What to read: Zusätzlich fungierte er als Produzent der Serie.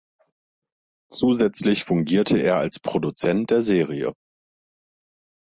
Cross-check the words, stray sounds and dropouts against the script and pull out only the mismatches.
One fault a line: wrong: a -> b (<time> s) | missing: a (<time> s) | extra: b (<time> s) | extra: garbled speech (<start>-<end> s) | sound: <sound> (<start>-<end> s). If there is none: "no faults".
no faults